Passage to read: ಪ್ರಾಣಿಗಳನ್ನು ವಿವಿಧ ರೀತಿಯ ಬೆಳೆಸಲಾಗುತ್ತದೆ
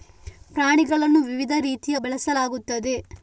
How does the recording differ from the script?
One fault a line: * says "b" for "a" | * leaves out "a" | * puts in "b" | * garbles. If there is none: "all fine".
all fine